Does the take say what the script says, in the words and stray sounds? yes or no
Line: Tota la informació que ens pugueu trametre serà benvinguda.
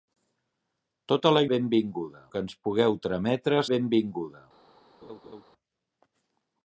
no